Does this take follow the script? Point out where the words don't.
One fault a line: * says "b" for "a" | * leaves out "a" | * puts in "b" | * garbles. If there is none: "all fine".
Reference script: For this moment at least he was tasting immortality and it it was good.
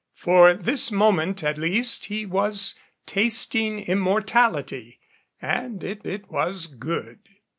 all fine